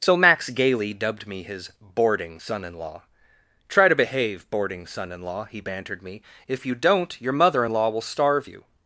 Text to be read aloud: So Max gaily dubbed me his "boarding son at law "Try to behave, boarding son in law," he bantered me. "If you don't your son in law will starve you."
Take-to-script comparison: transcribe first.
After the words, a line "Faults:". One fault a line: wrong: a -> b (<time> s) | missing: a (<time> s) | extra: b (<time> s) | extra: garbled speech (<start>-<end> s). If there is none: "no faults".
So Max gaily dubbed me his "boarding son in law "Try to behave, boarding son in law," he bantered me. "If you don't your mother in law will starve you."
Faults:
wrong: at -> in (2.6 s)
wrong: son -> mother (7.3 s)